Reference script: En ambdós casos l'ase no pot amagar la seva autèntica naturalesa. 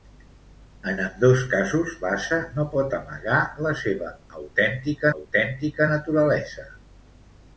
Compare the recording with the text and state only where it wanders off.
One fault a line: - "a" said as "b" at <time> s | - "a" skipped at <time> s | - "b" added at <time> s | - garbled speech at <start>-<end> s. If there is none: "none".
- "autèntica" added at 5.2 s